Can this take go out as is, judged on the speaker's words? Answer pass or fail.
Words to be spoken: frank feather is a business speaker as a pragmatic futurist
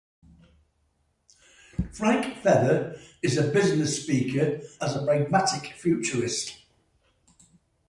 pass